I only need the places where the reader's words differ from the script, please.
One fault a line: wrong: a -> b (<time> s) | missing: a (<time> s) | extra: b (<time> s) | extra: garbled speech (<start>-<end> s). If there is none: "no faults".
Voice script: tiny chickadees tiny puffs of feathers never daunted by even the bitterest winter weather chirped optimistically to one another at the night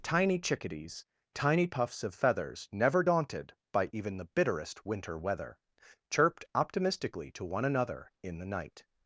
wrong: at -> in (8.2 s)